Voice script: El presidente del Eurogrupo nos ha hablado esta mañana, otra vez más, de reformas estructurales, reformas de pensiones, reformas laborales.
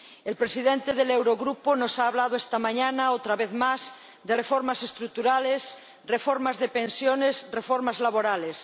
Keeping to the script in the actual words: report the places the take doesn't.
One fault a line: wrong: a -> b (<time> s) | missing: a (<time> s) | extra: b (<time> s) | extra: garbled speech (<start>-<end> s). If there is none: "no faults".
no faults